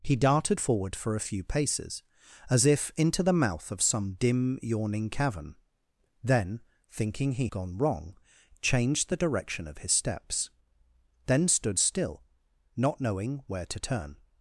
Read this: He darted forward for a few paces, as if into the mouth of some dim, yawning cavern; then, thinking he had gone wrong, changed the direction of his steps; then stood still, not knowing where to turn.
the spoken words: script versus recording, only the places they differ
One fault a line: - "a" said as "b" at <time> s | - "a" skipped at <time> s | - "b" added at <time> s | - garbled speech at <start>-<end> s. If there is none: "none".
- "had" skipped at 7.5 s